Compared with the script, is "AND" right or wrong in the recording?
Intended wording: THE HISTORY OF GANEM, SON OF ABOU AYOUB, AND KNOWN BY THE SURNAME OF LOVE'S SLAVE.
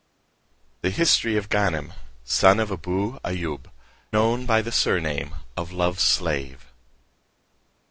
wrong